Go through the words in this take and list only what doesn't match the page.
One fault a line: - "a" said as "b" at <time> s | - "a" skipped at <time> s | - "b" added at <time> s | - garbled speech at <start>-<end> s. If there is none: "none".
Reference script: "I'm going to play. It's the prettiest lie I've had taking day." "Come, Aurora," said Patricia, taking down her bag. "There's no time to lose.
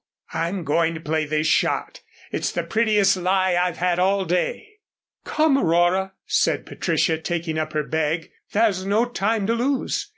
- "this shot" added at 1.2 s
- "taking" said as "all" at 4.0 s
- "down" said as "up" at 7.6 s